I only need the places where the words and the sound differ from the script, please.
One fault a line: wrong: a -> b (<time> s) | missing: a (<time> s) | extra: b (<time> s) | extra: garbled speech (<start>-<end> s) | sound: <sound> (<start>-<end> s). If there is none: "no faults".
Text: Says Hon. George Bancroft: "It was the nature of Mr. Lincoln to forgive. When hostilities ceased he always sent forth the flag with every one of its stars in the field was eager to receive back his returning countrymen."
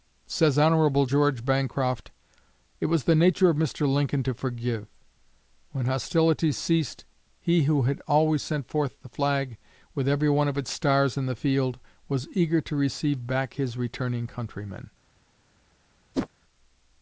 extra: who had (7.6 s)
sound: whoosh (16.1-16.3 s)